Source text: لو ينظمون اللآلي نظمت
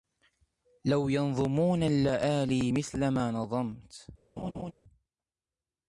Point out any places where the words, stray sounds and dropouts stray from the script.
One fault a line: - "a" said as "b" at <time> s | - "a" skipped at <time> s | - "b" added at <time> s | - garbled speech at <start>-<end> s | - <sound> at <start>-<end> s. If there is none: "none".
- "مثل ما" added at 2.7 s
- laugh at 4.4-4.7 s